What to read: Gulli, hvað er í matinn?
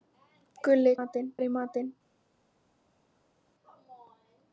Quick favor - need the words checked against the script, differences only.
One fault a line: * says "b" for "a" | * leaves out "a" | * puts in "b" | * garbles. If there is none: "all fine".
* says "matinn" for "hvað"